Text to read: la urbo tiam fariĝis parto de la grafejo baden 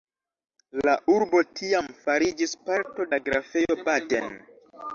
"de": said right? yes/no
no